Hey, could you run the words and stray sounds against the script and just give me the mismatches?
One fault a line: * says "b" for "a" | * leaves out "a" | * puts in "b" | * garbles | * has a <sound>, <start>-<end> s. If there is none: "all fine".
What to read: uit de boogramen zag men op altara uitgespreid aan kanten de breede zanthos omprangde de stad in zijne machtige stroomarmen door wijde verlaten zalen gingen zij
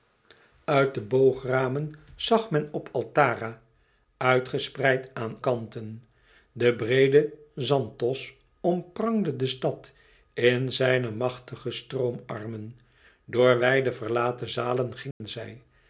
* has a dropout, 15.1-15.2 s